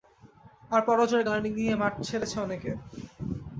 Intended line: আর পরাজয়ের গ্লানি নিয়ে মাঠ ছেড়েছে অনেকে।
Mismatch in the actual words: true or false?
false